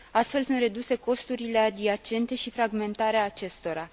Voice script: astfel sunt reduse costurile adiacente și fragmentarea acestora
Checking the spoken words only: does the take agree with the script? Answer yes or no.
yes